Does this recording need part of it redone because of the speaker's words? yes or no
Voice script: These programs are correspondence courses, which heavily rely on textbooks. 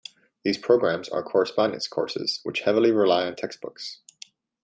no